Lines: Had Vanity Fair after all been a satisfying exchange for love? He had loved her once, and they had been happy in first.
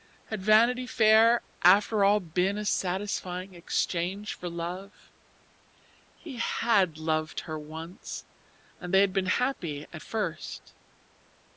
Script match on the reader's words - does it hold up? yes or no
no